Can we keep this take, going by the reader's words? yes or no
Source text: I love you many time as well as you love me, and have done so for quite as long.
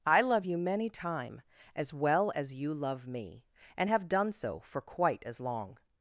yes